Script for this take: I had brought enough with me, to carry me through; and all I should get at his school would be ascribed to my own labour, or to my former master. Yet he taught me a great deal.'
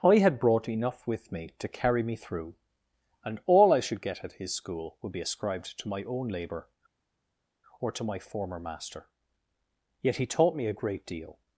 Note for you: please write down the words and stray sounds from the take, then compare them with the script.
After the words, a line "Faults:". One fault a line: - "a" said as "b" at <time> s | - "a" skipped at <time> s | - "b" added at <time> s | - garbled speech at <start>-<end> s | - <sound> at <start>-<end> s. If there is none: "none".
I had brought enough with me, to carry me through; and all I should get at his school would be ascribed to my own labour, or to my former master. Yet he taught me a great deal.'
Faults:
none